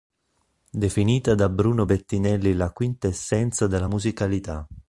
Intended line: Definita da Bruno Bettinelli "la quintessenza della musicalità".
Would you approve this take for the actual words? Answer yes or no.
yes